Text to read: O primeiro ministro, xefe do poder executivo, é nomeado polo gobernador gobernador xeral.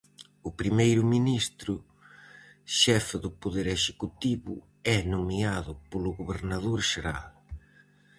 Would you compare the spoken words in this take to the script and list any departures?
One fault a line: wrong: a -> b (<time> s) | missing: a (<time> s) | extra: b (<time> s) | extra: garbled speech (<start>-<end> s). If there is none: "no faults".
missing: gobernador (6.8 s)